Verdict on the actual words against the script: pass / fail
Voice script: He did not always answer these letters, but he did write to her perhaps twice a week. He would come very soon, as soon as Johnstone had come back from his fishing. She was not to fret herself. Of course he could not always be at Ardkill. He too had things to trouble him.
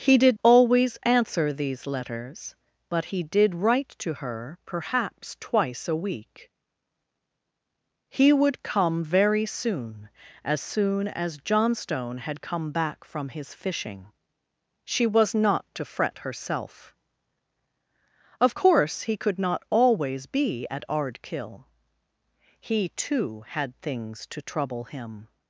fail